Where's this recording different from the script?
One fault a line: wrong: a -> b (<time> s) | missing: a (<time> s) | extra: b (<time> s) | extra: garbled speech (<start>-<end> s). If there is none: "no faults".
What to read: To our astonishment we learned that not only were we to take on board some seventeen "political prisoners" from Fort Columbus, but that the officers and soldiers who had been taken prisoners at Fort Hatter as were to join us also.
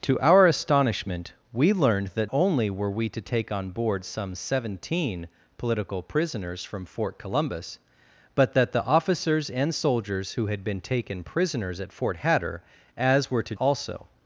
missing: not (2.3 s)
missing: join us (13.5 s)